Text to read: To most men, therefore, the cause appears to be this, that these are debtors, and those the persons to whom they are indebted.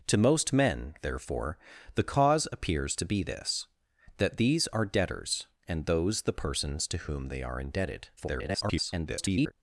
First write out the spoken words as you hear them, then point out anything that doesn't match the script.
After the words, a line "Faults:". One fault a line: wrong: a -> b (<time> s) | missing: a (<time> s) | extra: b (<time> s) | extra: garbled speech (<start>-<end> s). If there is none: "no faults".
To most men, therefore, the cause appears to be this, that these are debtors, and those the persons to whom they are indebted. [garbled]
Faults:
extra: garbled speech (8.2-9.5 s)